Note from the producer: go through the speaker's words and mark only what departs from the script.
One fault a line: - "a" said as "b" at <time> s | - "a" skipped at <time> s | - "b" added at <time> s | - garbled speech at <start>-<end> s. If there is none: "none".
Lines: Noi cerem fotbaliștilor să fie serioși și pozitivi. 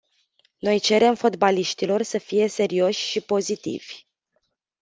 none